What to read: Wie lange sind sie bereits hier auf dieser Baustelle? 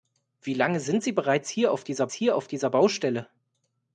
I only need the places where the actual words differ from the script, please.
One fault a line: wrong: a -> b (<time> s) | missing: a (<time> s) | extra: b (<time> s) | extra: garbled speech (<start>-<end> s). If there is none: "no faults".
extra: hier auf dieser (2.1 s)